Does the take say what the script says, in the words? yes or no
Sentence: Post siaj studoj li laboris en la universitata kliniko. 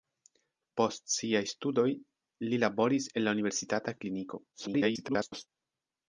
no